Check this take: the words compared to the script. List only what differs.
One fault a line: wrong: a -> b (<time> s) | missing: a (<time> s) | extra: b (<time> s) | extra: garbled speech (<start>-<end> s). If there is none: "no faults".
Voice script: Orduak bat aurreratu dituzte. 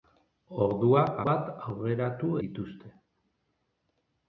no faults